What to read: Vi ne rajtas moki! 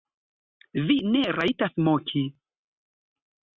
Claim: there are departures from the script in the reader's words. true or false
false